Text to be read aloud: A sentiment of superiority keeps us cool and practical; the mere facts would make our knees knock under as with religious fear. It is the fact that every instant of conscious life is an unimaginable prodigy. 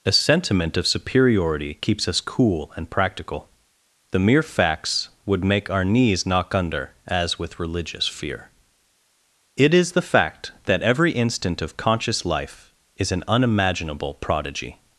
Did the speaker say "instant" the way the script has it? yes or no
yes